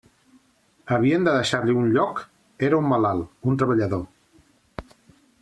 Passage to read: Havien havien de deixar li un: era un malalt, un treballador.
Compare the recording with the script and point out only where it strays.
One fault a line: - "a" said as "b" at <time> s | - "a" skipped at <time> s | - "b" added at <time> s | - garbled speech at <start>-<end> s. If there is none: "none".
- "havien" skipped at 1.3 s
- "lloc" added at 2.0 s